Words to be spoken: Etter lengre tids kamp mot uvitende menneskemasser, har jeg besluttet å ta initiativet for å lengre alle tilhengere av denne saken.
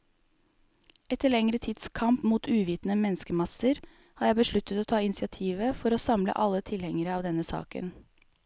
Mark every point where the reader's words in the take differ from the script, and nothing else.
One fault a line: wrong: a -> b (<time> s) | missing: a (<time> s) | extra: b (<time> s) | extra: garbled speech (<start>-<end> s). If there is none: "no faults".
wrong: lengre -> samle (6.0 s)